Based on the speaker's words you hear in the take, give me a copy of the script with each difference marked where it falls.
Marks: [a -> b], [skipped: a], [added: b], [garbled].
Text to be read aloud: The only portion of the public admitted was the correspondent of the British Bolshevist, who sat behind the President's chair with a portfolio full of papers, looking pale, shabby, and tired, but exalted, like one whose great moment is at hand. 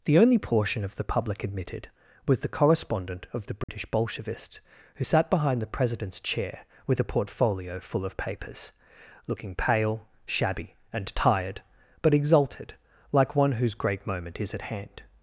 The only portion of the public admitted was the correspondent of the British Bolshevist, who sat behind the President's chair with a portfolio full of papers, looking pale, shabby, and tired, but exalted, like one whose great moment is at hand.